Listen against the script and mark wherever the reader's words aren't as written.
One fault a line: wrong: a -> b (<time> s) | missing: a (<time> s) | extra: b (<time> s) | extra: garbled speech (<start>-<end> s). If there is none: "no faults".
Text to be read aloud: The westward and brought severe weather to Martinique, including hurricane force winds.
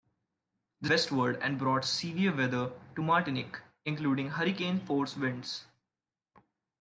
no faults